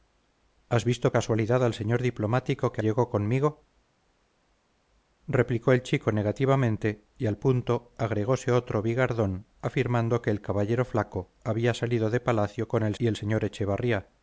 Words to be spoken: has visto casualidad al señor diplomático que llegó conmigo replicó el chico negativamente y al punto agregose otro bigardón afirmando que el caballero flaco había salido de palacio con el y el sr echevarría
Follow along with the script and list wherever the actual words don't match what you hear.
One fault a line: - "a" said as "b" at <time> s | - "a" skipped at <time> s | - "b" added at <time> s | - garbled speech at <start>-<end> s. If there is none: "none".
none